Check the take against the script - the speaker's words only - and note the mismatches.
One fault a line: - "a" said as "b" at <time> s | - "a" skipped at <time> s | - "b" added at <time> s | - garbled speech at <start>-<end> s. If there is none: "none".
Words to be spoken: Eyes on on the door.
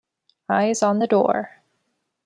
- "on" skipped at 1.0 s